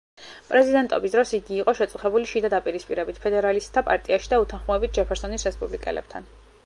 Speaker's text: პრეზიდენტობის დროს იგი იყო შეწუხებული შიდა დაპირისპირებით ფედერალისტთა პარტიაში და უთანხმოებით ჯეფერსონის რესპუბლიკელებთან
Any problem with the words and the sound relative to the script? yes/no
no